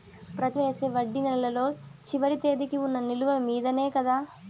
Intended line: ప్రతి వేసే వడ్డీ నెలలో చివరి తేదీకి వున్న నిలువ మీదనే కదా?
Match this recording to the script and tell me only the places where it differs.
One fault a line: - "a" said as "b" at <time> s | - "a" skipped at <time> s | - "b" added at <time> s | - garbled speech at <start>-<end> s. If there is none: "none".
none